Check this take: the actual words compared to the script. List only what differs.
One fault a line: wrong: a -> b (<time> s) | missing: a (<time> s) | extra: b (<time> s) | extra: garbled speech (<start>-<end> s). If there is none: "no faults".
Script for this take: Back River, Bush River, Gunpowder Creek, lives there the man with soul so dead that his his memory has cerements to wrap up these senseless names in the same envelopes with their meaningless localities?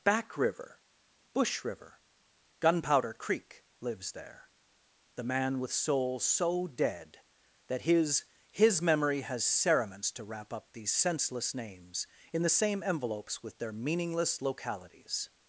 no faults